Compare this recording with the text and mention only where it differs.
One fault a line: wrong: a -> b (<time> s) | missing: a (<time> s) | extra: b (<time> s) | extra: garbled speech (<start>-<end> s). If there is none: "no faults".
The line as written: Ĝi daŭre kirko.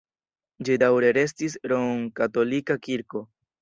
extra: restis romkatolika (1.2 s)